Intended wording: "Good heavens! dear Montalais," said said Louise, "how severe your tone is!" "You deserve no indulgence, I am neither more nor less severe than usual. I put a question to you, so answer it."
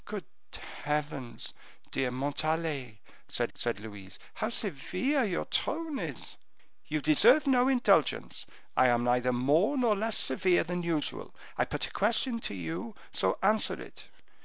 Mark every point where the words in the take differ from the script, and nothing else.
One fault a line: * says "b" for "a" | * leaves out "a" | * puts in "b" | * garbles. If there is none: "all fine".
all fine